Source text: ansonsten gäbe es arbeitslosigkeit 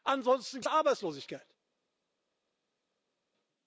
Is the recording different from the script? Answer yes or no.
yes